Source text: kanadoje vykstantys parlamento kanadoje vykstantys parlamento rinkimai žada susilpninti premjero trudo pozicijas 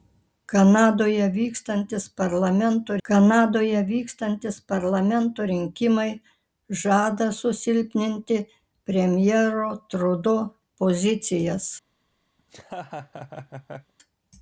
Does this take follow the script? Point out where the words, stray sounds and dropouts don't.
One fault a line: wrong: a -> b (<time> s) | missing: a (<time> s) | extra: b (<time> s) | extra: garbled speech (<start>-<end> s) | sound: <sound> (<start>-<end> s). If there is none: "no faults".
sound: laugh (12.4-13.9 s)